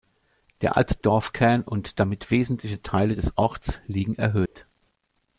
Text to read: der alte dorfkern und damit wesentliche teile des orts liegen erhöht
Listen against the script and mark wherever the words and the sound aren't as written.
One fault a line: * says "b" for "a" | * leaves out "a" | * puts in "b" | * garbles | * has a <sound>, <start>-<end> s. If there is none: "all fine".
* has a dropout, 4.5-4.6 s